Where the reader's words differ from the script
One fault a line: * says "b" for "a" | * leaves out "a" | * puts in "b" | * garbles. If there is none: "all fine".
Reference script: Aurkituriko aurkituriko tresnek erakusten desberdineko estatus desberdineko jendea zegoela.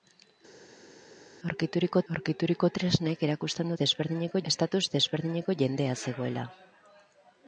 all fine